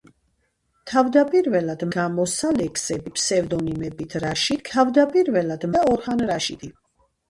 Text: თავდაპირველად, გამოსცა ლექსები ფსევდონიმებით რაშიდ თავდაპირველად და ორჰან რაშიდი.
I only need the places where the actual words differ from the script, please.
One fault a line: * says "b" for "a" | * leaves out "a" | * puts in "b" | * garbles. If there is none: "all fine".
all fine